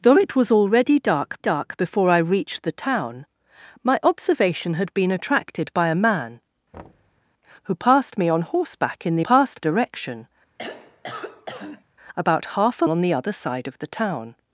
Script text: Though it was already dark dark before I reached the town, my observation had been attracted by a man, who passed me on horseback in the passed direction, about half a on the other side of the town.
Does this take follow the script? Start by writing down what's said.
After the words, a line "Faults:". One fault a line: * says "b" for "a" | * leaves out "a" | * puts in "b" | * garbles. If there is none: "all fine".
Though it was already dark dark before I reached the town, my observation had been attracted by a man, who passed me on horseback in the passed direction, about half a on the other side of the town.
Faults:
all fine